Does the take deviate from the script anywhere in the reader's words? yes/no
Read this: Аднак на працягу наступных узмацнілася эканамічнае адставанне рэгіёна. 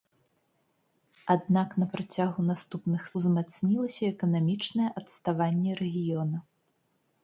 no